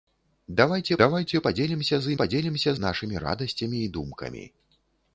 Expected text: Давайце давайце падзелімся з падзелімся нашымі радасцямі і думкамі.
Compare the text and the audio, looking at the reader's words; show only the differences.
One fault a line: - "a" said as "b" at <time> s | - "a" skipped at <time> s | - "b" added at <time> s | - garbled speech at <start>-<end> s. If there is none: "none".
none